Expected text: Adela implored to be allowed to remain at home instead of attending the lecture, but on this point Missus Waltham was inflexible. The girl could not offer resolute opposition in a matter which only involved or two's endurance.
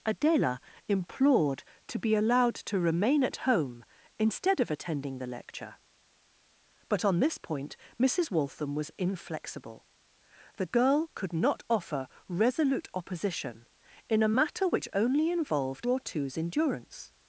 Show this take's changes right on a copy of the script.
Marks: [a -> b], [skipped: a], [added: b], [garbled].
Adela implored to be allowed to remain at home instead of attending the lecture, but on this point Missus Waltham was inflexible. The girl could not offer resolute opposition in a matter which only involved or two's endurance.